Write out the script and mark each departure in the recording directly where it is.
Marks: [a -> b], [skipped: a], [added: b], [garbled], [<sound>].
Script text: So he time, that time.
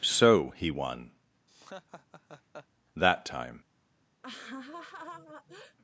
So he [time, -> won] [laugh] that time. [laugh]